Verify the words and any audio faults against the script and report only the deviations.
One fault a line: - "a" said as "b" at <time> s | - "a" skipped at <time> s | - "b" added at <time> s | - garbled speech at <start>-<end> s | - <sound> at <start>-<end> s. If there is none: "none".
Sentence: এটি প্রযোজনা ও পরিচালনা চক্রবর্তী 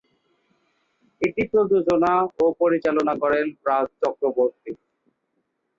- "করেন রাজ" added at 3.2 s